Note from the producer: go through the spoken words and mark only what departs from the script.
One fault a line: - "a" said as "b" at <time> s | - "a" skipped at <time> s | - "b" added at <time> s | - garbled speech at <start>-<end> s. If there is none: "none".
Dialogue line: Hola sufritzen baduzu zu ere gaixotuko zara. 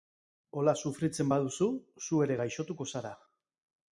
none